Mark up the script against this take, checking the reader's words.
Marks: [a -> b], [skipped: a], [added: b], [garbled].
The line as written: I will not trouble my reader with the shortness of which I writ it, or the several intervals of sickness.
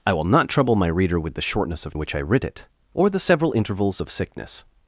I will not trouble my reader with the shortness of which I writ it, or the several intervals of sickness.